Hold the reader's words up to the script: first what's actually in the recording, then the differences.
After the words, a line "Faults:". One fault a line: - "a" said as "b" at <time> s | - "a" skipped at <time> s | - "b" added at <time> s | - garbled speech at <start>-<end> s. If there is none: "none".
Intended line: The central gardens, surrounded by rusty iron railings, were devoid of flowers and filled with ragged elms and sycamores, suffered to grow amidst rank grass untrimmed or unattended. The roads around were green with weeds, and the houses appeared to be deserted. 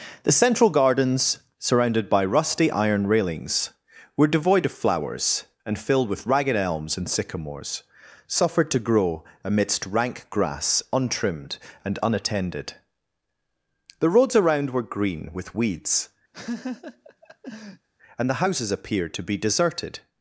The central gardens, surrounded by rusty iron railings, were devoid of flowers and filled with ragged elms and sycamores, suffered to grow amidst rank grass untrimmed and unattended. The roads around were green with weeds, and the houses appeared to be deserted.
Faults:
- "or" said as "and" at 11.8 s